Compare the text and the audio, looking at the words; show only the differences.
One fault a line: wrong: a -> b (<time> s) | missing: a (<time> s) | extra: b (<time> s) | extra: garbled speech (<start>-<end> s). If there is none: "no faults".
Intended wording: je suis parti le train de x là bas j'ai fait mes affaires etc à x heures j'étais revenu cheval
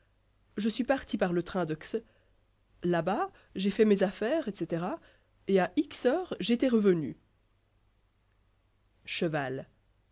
extra: par (1.2 s)
extra: et (5.5 s)